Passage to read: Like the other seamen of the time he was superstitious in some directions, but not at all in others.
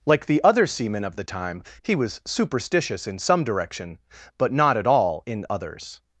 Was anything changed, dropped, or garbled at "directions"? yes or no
yes